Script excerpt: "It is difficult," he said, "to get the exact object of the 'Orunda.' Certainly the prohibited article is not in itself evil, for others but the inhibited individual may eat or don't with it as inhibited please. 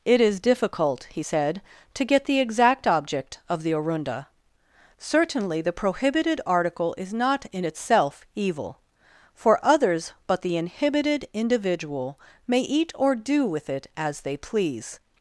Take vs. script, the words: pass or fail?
fail